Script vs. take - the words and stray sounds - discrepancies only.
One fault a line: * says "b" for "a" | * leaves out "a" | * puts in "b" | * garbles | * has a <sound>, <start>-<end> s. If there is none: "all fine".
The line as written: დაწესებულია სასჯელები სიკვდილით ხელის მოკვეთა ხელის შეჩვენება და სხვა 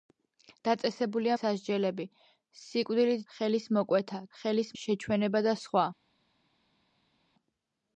all fine